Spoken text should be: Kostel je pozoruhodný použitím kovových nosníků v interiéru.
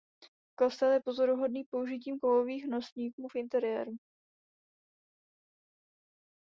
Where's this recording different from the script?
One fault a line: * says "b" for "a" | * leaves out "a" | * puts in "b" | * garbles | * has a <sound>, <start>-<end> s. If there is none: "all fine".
all fine